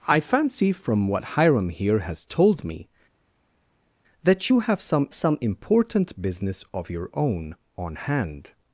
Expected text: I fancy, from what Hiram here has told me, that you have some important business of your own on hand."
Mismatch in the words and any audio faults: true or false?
true